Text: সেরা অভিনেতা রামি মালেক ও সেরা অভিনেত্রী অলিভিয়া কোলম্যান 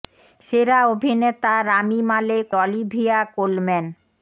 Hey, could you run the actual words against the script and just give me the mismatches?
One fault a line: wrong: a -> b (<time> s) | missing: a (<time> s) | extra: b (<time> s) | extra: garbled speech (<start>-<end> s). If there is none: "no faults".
missing: ও সেরা অভিনেত্রী (2.5 s)